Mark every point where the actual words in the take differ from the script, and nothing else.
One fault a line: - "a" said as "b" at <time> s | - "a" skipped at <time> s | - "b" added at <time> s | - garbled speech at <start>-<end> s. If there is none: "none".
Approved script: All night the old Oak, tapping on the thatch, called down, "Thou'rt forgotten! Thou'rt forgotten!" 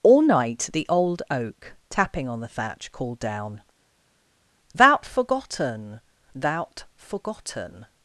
none